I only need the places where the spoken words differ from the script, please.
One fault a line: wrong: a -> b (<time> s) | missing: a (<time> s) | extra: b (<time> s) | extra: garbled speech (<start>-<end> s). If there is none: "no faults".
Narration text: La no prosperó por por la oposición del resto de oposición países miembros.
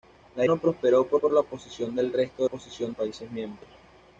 no faults